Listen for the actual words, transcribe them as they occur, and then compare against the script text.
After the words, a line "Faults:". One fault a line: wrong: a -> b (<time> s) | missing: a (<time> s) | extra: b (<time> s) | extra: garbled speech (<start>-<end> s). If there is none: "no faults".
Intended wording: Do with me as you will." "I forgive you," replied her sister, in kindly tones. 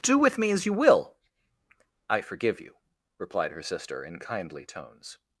Do with me as you will." "I forgive you," replied her sister, in kindly tones.
Faults:
no faults